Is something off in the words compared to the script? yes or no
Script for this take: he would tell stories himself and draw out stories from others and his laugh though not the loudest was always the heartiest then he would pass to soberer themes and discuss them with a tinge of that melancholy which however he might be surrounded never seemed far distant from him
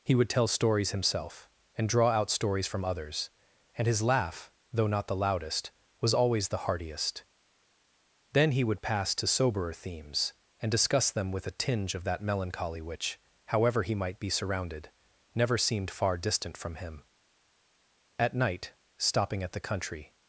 yes